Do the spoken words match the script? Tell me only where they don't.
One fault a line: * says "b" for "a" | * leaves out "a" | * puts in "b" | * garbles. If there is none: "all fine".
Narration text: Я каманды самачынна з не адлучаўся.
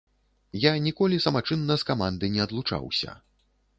* says "ніколі" for "каманды"
* puts in "каманды"